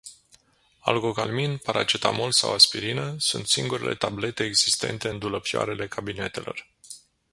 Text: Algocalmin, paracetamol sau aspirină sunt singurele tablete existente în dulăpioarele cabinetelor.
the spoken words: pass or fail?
pass